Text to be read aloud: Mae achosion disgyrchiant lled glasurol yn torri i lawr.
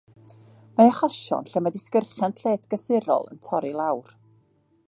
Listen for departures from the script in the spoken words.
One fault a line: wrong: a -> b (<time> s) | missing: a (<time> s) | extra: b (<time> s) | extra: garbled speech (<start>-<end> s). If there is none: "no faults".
extra: lle mae (1.5 s)